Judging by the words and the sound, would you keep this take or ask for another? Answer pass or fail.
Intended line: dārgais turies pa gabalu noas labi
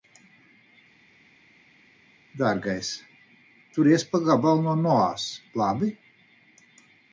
fail